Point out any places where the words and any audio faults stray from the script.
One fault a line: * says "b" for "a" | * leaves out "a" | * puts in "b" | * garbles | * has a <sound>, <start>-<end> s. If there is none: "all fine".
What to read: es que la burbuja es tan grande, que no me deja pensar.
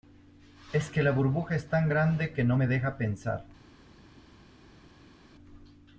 all fine